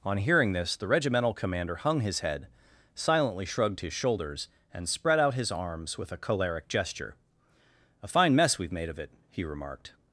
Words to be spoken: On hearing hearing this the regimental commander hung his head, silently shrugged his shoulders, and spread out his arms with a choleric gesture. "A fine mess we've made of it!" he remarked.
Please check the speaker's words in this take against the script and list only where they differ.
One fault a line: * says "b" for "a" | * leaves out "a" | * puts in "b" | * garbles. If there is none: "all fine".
* leaves out "hearing"